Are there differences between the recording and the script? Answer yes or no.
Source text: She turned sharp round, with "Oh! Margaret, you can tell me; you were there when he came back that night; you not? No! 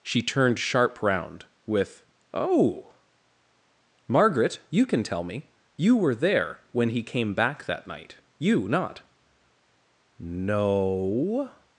no